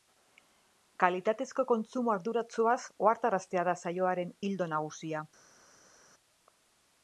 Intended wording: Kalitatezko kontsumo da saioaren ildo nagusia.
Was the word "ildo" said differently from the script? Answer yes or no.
no